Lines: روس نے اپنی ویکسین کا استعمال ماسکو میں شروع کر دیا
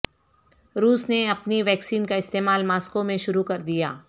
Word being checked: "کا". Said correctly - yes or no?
yes